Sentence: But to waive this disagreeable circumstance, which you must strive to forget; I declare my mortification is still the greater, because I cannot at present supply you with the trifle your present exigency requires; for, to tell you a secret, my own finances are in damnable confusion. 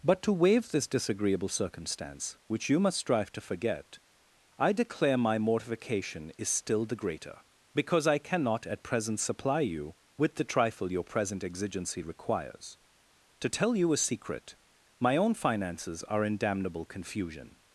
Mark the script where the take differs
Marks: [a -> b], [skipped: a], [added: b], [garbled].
But to waive this disagreeable circumstance, which you must strive to forget; I declare my mortification is still the greater, because I cannot at present supply you with the trifle your present exigency requires; [skipped: for,] to tell you a secret, my own finances are in damnable confusion.